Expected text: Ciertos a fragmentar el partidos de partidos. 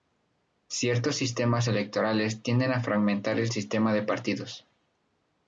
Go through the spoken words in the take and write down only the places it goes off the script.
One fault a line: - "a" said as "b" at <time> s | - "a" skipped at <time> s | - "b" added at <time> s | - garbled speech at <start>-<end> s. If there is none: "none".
- "sistemas electorales tienden" added at 1.2 s
- "partidos" said as "sistema" at 3.5 s